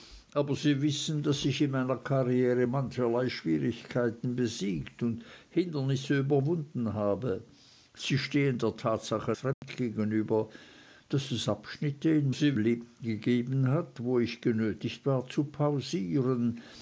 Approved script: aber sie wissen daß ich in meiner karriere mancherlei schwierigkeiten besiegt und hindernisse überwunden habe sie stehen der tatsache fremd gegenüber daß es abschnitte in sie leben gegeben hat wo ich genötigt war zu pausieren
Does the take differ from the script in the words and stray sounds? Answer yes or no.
yes